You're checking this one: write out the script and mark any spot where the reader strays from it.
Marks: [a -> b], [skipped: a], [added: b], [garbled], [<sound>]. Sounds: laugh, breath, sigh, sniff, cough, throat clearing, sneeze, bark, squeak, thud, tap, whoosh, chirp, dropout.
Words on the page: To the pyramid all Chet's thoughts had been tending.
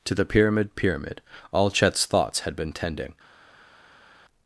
To the pyramid [added: pyramid] all Chet's thoughts had been tending.